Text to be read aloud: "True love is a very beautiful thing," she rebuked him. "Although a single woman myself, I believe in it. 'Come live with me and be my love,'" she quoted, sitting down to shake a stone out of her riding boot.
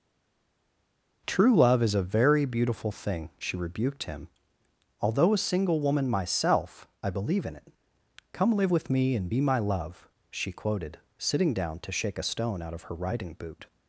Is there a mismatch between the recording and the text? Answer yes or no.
no